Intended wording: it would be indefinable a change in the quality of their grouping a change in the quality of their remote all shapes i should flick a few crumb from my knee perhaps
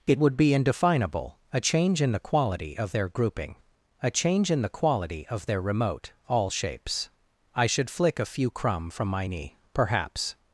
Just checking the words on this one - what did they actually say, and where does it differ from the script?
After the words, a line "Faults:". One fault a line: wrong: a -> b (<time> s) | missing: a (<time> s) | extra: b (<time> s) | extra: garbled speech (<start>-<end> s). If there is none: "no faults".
it would be indefinable a change in the quality of their grouping a change in the quality of their remote all shapes i should flick a few crumb from my knee perhaps
Faults:
no faults